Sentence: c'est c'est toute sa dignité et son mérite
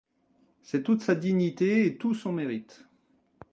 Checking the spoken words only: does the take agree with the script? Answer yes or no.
no